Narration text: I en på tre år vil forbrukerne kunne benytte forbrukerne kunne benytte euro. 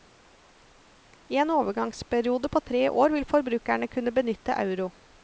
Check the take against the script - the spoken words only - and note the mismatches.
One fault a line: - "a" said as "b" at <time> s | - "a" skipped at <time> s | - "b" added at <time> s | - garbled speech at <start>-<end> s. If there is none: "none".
- "overgangsperiode" added at 1.5 s
- "forbrukerne kunne benytte" skipped at 4.6 s